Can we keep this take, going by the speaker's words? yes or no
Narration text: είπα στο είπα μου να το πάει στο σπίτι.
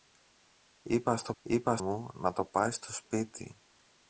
yes